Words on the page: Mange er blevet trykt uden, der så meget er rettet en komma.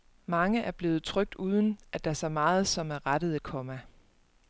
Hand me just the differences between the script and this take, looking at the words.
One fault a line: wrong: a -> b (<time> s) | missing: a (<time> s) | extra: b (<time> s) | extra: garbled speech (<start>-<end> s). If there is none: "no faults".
extra: at (1.9 s)
extra: som (2.7 s)
wrong: en -> et (3.3 s)